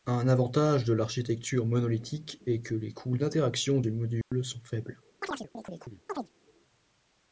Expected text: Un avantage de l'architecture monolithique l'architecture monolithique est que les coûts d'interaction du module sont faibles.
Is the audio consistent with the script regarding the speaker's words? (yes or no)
no